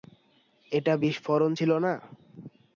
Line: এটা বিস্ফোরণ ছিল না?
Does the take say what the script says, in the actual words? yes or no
yes